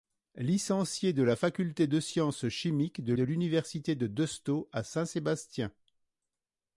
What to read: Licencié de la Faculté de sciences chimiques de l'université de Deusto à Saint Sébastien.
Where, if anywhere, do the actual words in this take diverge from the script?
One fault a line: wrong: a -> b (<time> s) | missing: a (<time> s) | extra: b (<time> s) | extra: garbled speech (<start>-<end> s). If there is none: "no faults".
extra: de (3.1 s)